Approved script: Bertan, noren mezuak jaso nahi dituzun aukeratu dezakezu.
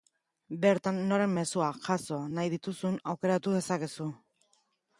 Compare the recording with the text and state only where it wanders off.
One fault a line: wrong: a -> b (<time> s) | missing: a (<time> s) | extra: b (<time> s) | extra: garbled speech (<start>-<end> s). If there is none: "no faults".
no faults